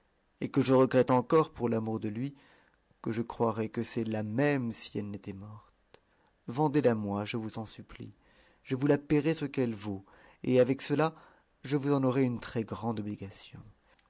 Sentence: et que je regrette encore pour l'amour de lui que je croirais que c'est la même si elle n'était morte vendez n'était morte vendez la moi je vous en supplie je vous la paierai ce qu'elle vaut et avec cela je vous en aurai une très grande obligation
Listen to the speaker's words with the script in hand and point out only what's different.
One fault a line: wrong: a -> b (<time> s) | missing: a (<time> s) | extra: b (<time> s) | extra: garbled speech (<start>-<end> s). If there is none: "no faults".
missing: n'était morte vendez (6.8 s)